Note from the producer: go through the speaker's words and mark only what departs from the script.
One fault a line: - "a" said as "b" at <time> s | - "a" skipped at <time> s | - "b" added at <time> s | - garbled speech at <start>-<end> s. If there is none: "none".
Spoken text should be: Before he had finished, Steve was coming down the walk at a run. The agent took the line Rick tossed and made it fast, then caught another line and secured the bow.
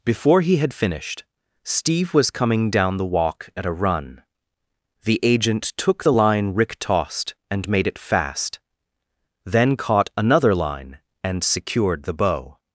none